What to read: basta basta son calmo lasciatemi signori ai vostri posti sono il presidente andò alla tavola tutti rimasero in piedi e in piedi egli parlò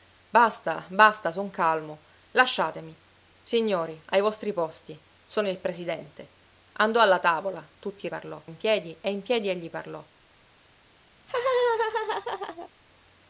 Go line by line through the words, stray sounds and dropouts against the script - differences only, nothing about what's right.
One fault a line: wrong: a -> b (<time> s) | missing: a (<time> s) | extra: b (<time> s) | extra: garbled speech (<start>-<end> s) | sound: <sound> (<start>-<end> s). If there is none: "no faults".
wrong: rimasero -> parlò (8.1 s)
sound: laugh (11.2-12.7 s)